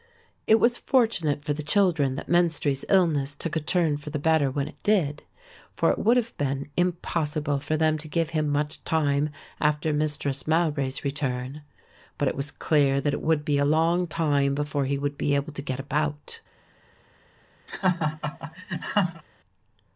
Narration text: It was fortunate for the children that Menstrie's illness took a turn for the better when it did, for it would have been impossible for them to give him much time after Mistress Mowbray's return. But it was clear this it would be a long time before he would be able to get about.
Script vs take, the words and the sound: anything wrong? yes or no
yes